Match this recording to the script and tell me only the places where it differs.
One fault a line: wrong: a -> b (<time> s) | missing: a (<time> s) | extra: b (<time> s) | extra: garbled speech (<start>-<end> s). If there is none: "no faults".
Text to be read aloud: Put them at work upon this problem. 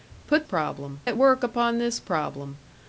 wrong: them -> problem (0.4 s)